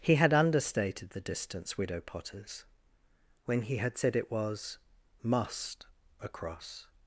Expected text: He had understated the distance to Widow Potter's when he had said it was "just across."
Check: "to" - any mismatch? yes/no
yes